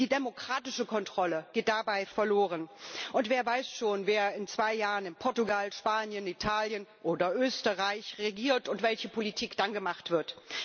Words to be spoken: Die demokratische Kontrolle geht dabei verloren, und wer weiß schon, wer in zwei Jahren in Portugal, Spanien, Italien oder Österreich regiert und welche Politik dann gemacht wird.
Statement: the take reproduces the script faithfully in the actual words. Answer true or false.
true